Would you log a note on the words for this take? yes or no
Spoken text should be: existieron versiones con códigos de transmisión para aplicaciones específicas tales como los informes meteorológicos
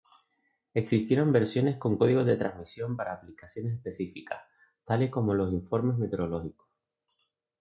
no